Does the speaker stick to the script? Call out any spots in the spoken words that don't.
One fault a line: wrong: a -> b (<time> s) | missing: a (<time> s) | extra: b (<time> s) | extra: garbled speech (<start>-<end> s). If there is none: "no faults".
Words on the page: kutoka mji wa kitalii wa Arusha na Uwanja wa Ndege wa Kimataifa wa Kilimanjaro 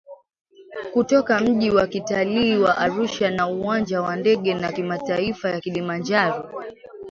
no faults